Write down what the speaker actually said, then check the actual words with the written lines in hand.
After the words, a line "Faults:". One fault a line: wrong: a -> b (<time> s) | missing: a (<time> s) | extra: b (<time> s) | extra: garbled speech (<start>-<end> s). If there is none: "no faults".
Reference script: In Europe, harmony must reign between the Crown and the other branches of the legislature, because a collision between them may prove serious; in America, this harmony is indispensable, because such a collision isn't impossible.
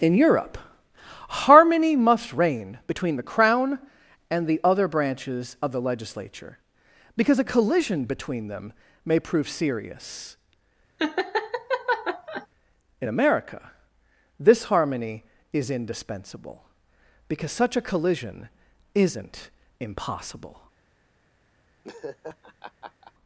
In Europe, harmony must reign between the Crown and the other branches of the legislature, because a collision between them may prove serious; in America, this harmony is indispensable, because such a collision isn't impossible.
Faults:
no faults